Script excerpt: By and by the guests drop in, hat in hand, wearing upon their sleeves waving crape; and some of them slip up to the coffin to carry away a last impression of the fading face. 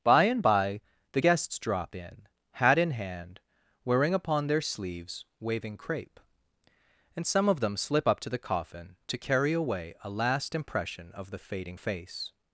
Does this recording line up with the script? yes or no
yes